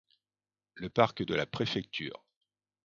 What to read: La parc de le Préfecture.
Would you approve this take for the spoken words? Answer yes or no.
no